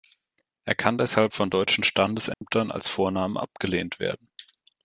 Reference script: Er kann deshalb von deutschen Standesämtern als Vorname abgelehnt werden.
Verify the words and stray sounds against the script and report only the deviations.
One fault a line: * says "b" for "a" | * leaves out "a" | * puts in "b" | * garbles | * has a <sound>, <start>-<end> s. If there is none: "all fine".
* has a dropout, 2.3-2.4 s